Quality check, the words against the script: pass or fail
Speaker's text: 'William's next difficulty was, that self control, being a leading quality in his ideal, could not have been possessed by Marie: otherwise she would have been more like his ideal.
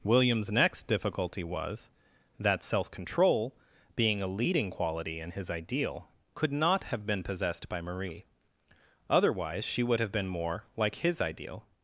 pass